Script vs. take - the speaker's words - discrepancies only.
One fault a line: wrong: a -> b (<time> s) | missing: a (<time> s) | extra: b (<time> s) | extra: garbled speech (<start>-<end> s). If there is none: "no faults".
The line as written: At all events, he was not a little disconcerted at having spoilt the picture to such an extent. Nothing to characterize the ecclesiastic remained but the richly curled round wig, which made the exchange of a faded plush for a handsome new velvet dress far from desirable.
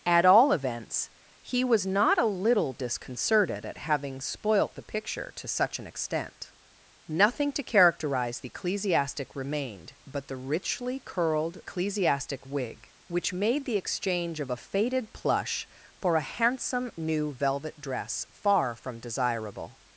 wrong: round -> ecclesiastic (11.6 s)